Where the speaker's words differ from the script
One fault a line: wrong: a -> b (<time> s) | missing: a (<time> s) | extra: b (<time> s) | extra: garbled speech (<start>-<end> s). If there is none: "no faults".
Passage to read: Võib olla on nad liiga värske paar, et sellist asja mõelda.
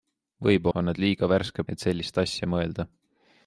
missing: olla (0.7 s)
missing: paar (1.6 s)